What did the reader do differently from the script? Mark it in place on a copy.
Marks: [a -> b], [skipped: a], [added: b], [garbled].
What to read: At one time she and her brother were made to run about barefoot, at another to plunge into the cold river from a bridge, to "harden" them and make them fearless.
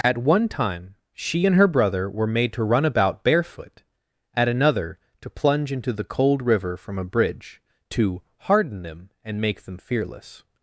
At one time she and her brother were made to run about barefoot, at another to plunge into the cold river from a bridge, to "harden" them and make them fearless.